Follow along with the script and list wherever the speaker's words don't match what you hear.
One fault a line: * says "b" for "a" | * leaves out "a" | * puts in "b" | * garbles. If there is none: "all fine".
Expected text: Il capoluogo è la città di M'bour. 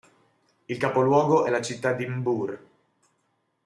all fine